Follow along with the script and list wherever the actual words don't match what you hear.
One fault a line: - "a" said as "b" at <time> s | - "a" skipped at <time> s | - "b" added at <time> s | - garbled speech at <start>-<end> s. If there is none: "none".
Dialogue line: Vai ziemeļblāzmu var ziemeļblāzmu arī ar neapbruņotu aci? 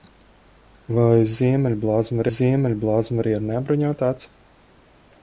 none